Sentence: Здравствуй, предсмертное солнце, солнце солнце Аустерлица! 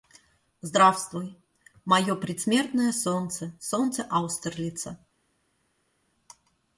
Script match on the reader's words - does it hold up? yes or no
no